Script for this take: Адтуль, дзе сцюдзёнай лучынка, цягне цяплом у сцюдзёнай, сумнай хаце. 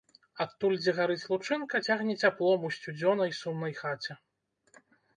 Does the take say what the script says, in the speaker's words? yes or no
no